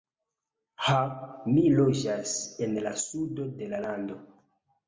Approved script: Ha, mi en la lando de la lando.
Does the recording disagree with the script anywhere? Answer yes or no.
yes